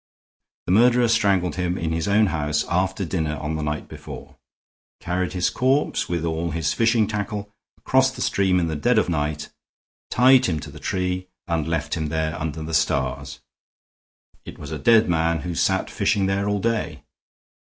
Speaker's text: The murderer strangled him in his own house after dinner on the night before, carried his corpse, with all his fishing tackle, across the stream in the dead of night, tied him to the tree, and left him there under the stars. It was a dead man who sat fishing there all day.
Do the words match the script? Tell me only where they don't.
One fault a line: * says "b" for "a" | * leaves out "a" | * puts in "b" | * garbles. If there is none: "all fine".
all fine